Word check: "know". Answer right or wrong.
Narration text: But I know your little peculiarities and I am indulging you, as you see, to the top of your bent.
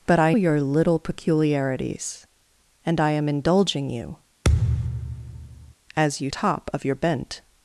wrong